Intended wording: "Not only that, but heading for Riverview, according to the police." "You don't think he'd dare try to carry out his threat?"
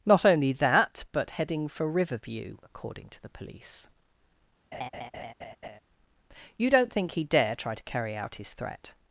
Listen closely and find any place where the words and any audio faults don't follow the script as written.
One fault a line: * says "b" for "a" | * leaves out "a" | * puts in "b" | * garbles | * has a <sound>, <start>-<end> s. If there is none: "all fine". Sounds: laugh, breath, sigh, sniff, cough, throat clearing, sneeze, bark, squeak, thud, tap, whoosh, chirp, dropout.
* has a laugh, 4.7-5.8 s